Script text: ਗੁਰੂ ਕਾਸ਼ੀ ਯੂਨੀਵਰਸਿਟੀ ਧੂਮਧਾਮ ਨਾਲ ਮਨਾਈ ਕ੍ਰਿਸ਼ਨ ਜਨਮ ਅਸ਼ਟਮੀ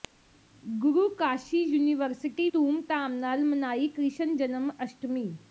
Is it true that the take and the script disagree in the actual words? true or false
false